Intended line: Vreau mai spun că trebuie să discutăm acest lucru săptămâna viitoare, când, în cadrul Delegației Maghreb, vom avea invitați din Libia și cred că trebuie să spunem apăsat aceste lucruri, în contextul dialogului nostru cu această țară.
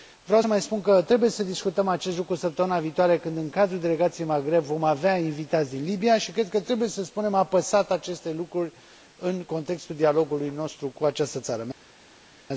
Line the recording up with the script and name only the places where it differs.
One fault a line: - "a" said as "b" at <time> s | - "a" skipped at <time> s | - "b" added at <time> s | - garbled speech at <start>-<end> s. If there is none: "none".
none